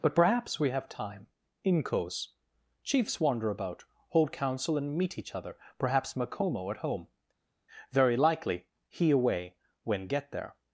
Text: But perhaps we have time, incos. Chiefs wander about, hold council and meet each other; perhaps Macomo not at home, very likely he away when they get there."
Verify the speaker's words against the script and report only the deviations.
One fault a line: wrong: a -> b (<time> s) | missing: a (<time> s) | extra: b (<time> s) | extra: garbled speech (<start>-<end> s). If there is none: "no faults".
missing: not (6.7 s)
missing: they (10.1 s)